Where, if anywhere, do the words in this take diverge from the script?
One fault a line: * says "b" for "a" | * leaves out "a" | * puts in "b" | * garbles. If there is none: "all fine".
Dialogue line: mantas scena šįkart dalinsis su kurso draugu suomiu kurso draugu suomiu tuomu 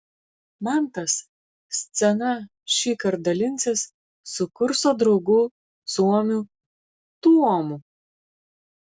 * leaves out "kurso draugu suomiu"